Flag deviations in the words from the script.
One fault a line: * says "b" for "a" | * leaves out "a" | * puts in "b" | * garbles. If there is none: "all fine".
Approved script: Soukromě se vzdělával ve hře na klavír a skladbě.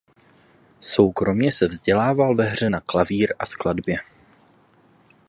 all fine